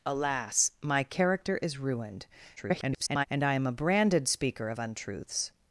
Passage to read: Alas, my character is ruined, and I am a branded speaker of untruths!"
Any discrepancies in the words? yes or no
yes